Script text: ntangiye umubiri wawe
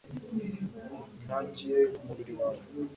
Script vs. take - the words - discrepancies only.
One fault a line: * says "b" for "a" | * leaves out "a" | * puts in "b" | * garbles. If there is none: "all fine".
all fine